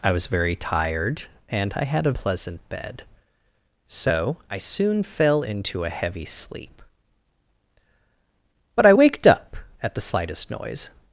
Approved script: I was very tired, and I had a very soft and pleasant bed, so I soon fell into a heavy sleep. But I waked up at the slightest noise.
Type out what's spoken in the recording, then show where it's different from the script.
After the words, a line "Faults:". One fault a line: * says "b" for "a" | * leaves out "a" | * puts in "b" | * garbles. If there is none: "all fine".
I was very tired, and I had a pleasant bed, so I soon fell into a heavy sleep. But I waked up at the slightest noise.
Faults:
* leaves out "very soft and"